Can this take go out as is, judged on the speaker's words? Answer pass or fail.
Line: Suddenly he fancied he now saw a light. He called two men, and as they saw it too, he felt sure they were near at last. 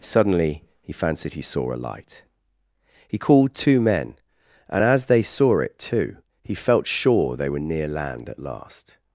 fail